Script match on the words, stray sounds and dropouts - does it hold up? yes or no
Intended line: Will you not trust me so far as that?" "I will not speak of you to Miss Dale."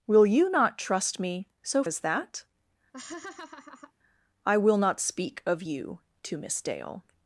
no